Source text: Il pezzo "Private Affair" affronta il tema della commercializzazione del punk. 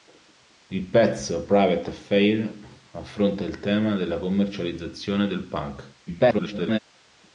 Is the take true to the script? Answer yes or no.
no